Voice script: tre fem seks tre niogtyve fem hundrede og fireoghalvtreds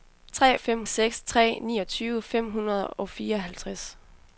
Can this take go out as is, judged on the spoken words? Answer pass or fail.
pass